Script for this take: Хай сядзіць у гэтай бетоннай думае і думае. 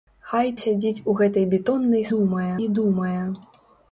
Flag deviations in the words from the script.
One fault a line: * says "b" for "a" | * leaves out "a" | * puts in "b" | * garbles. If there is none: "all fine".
all fine